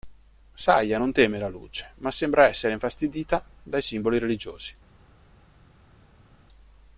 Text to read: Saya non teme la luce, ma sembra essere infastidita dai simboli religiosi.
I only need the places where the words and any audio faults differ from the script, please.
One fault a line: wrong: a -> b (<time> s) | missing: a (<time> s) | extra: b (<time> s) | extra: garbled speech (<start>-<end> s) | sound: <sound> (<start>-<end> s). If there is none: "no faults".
no faults